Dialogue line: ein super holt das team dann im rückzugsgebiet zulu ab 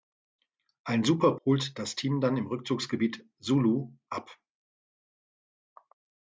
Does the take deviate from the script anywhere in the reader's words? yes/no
no